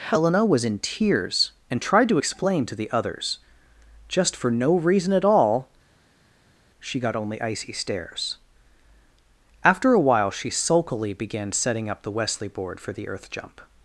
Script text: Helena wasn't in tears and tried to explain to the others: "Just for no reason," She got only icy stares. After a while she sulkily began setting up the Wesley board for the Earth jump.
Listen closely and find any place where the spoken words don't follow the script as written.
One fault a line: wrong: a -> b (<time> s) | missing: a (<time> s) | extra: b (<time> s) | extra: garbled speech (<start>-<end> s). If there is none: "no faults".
wrong: wasn't -> was (0.4 s)
extra: at all (5.1 s)